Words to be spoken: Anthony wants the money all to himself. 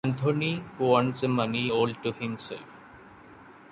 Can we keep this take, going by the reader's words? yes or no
yes